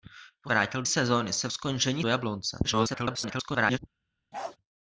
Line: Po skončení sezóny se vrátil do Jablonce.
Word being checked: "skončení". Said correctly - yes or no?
no